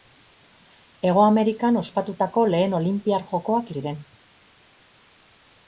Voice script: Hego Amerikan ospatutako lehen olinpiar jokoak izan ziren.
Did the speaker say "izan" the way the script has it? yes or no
no